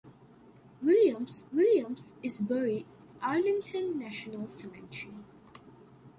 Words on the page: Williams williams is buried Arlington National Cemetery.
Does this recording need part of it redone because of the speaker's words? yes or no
no